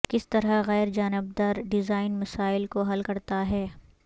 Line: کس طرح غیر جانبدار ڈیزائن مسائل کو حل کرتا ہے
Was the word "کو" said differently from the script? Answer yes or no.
no